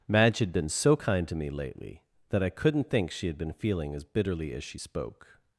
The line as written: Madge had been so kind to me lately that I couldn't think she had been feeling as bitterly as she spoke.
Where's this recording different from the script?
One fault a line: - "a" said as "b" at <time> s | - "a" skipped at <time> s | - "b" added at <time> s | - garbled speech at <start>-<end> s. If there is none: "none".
none